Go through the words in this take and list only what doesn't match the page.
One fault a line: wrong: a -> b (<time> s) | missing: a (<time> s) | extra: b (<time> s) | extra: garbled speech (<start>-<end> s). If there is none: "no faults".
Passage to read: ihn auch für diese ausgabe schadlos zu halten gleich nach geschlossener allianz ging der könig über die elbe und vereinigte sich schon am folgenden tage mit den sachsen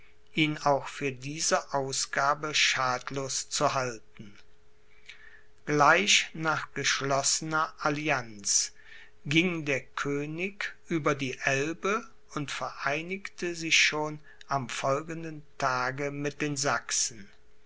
no faults